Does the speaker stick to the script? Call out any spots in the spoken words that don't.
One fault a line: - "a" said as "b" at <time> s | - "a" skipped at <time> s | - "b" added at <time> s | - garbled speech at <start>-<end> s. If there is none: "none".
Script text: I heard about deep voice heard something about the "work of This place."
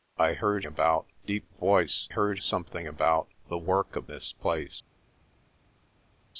none